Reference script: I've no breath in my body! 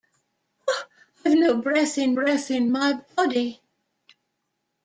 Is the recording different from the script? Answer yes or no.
yes